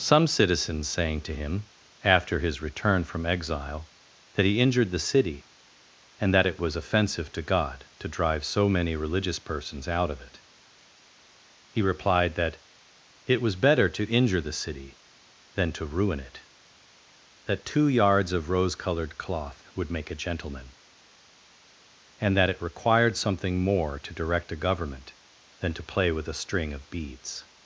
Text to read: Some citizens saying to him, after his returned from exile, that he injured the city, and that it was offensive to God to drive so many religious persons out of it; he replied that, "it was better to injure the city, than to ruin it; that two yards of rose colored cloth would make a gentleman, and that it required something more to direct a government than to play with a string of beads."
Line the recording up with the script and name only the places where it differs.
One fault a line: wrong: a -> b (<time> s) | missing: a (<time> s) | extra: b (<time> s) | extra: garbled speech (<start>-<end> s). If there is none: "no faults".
wrong: returned -> return (2.6 s)